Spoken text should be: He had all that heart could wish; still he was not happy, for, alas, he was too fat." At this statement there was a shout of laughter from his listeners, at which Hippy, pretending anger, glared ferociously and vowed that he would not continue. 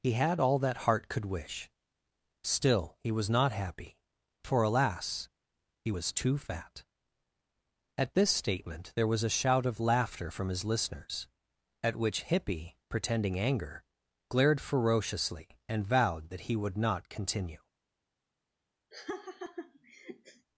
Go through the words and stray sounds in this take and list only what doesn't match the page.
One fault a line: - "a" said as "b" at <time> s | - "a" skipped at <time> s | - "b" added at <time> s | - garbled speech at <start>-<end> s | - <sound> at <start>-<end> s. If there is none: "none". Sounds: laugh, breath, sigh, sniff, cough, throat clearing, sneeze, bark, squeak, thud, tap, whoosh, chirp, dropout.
- laugh at 18.9-20.5 s